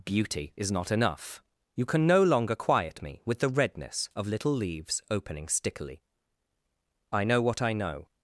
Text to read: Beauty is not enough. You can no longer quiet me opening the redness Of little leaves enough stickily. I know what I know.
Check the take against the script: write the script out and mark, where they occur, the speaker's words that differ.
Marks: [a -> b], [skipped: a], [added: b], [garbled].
Beauty is not enough. You can no longer quiet me [opening -> with] the redness Of little leaves [enough -> opening] stickily. I know what I know.